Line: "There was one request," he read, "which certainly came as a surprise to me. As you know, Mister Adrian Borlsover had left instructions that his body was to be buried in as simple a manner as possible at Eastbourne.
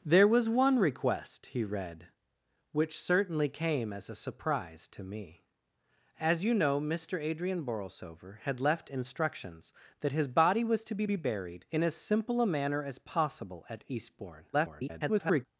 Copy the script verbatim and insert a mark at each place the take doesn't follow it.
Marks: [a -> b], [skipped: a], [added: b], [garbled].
"There was one request," he read, "which certainly came as a surprise to me. As you know, Mister Adrian Borlsover had left instructions that his body was to be [added: be] buried in as simple a manner as possible at Eastbourne. [garbled]